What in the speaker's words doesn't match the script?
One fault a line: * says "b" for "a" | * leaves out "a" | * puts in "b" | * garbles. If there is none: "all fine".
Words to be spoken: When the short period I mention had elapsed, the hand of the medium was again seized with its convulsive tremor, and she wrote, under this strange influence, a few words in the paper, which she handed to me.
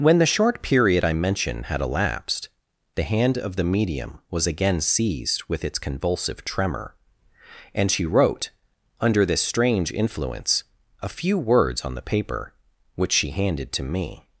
* says "on" for "in"